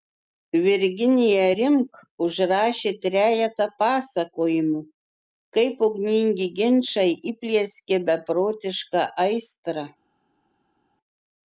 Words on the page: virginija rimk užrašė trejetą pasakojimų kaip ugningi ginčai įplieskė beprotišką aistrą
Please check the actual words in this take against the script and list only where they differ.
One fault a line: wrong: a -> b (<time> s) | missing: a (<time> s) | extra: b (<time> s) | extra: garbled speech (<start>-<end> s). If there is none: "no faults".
no faults